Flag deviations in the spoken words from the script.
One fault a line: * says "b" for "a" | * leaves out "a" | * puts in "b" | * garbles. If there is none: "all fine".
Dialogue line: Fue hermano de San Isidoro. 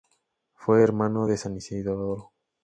all fine